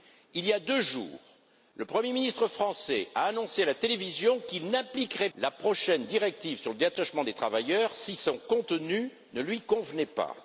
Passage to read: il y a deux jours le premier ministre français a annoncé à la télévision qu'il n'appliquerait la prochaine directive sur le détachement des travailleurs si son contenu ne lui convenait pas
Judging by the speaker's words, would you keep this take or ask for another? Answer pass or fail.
pass